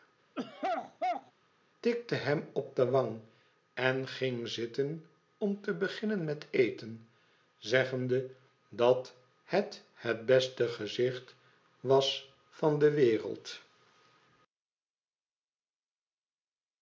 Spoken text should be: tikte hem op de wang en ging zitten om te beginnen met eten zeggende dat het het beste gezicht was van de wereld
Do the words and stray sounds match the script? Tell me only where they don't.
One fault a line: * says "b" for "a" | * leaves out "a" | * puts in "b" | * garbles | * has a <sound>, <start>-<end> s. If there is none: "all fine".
* has a throat clearing, 0.4-1.3 s